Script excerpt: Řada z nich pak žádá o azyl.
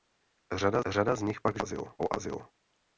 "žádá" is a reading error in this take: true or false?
true